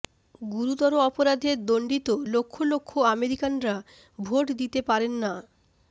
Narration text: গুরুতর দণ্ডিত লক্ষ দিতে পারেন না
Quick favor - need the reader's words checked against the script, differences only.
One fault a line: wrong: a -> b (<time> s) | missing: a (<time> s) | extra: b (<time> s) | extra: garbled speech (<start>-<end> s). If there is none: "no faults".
extra: অপরাধে (1.1 s)
extra: লক্ষ আমেরিকানরা ভোট (2.6 s)